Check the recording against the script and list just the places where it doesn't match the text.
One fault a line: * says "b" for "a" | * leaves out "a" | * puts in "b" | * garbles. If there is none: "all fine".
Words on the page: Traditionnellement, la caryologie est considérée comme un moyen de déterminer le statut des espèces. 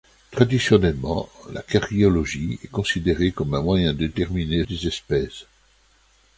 * leaves out "statut"